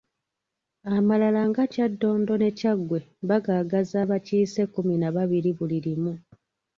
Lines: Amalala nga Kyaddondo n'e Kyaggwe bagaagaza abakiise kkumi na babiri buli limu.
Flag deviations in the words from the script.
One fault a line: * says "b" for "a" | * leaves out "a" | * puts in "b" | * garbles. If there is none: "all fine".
all fine